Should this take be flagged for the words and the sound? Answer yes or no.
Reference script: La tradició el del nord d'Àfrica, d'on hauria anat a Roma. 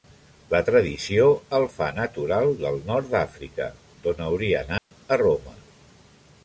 yes